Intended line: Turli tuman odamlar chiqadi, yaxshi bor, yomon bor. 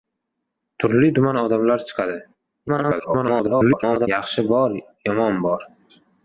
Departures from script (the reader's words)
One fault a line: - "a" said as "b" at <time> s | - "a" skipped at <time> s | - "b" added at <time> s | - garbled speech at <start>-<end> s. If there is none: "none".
- garbled speech at 2.7-4.1 s